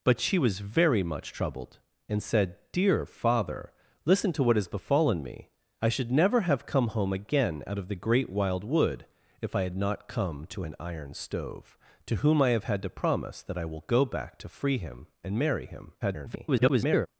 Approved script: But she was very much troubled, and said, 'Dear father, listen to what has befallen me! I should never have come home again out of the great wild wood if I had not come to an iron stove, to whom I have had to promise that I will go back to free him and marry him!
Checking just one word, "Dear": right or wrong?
right